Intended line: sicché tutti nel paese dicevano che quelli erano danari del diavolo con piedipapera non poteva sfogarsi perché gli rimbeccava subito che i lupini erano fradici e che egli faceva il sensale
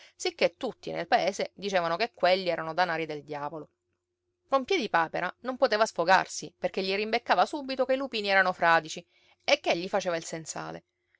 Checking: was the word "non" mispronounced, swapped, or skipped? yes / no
no